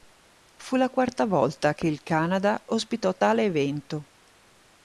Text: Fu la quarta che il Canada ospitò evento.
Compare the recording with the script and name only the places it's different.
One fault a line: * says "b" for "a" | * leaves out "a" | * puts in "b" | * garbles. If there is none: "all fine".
* puts in "volta"
* puts in "tale"